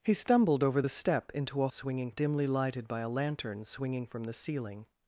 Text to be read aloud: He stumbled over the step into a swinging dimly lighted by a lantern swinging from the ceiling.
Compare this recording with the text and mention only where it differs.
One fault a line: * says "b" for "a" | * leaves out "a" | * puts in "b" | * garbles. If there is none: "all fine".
all fine